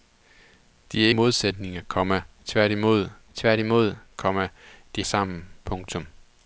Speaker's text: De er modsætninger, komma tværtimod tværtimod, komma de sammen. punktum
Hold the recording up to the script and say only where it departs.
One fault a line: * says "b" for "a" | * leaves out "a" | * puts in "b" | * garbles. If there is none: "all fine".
all fine